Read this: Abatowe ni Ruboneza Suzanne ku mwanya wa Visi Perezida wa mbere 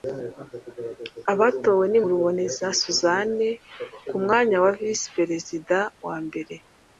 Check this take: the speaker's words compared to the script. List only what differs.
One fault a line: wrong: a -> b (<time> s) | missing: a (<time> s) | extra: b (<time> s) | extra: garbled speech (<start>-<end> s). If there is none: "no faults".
no faults